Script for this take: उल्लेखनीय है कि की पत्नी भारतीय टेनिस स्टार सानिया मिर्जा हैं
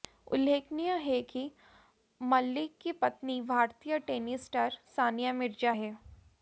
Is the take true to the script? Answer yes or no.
no